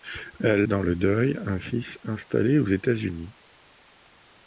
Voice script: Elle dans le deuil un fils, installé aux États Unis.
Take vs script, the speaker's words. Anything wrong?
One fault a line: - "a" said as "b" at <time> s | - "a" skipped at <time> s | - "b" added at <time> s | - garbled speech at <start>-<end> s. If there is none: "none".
none